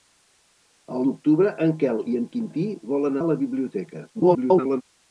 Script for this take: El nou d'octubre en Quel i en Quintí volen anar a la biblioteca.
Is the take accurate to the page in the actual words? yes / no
no